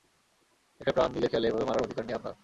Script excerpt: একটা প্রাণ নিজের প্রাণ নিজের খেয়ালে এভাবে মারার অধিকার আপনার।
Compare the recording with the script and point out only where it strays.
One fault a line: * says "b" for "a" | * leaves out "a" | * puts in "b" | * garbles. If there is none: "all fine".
* leaves out "প্রাণ নিজের"
* puts in "নেই"